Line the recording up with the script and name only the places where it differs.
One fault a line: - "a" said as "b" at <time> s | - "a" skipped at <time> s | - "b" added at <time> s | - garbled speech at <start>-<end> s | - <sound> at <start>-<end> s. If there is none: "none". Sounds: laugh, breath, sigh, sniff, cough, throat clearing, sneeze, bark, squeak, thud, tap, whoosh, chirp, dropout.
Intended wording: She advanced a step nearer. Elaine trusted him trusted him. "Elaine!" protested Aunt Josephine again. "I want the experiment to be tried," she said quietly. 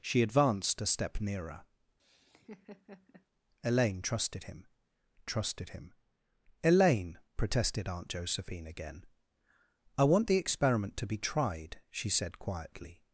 - laugh at 2.0-3.3 s